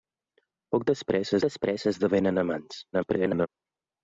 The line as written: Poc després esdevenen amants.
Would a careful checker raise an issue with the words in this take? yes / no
yes